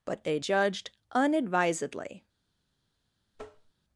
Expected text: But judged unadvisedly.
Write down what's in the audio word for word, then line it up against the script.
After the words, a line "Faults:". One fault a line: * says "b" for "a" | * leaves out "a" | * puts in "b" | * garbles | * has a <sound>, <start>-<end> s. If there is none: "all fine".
But they judged unadvisedly.
Faults:
* puts in "they"
* has a tap, 3.3-3.7 s